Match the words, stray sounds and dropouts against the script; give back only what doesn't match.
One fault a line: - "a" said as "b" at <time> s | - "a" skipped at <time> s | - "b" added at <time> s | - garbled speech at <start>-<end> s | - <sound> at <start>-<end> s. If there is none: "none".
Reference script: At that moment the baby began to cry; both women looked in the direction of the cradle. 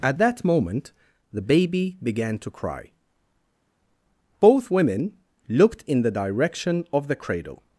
none